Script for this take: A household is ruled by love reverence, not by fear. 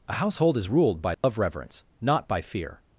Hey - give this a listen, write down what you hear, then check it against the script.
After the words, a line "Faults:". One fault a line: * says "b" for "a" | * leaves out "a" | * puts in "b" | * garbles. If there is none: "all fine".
A household is ruled by love reverence, not by fear.
Faults:
all fine